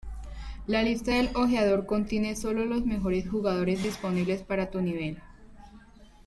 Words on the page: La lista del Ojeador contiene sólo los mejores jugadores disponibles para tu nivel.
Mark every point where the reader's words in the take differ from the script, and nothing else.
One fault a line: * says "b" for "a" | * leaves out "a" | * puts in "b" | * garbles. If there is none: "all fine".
all fine